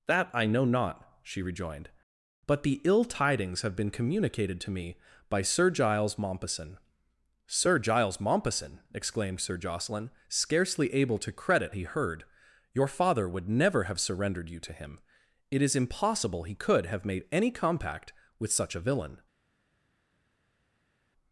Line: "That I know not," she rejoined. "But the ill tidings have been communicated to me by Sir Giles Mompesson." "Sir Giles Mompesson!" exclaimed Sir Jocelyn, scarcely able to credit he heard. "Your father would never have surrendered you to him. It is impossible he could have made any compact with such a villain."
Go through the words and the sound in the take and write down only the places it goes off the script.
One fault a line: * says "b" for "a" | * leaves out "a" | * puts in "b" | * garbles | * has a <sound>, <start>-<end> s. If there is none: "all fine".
all fine